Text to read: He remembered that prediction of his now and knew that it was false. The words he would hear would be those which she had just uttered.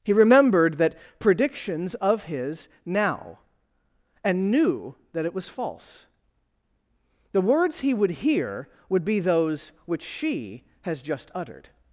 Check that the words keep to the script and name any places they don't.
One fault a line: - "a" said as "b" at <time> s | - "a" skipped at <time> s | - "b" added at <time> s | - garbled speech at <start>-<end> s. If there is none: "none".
- "prediction" said as "predictions" at 1.2 s
- "had" said as "has" at 10.8 s